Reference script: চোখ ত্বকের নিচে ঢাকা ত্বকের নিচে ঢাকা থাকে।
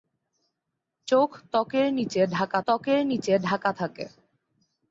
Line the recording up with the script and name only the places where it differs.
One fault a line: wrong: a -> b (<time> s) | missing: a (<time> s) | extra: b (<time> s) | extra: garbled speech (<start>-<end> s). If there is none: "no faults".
no faults